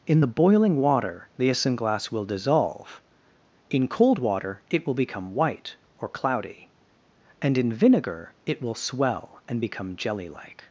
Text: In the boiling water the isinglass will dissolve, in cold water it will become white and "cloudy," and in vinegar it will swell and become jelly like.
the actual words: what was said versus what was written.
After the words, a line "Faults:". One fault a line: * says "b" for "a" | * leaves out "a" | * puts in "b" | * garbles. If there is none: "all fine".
In the boiling water the isinglass will dissolve, in cold water it will become white or "cloudy," and in vinegar it will swell and become jelly like.
Faults:
* says "or" for "and"